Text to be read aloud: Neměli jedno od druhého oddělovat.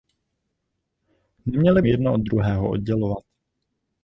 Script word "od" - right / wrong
right